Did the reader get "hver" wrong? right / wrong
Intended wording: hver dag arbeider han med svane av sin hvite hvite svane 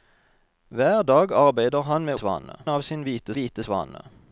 right